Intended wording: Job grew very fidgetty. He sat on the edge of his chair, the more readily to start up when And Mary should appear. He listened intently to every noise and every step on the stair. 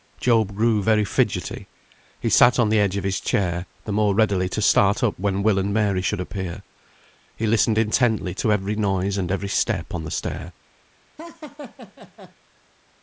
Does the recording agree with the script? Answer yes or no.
no